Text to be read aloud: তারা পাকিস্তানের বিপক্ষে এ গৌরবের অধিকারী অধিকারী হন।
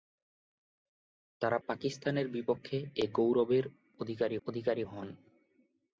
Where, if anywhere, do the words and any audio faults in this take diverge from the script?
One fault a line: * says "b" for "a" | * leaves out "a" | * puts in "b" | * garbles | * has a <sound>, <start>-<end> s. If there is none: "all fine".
all fine